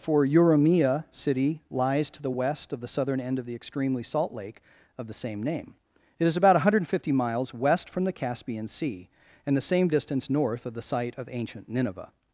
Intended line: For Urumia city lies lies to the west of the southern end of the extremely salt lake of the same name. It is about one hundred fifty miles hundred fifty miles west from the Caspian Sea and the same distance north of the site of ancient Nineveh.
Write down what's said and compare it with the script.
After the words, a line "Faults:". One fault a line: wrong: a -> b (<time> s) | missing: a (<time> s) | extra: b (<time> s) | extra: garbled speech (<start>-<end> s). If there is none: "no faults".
For Urumia city lies to the west of the southern end of the extremely salt lake of the same name. It is about one hundred fifty miles west from the Caspian Sea and the same distance north of the site of ancient Nineveh.
Faults:
missing: lies (2.1 s)
missing: hundred fifty miles (7.5 s)